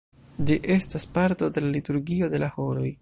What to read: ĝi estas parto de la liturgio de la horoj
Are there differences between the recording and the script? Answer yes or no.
no